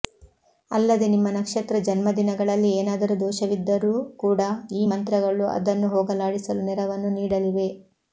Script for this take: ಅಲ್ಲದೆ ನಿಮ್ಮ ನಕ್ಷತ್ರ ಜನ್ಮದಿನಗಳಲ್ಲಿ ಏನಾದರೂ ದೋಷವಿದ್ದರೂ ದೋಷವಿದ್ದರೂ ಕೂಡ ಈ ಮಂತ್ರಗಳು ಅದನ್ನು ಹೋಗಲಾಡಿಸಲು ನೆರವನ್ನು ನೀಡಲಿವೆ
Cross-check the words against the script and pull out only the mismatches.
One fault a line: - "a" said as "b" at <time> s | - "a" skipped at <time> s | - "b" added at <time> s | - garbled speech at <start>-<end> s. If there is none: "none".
- "ದೋಷವಿದ್ದರೂ" skipped at 3.9 s